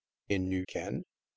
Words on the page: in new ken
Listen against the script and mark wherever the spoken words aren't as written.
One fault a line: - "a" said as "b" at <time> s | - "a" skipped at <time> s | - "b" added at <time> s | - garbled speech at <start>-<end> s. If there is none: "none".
none